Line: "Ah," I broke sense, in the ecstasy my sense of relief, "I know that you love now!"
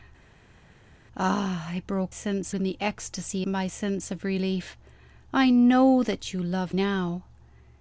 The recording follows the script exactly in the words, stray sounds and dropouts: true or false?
true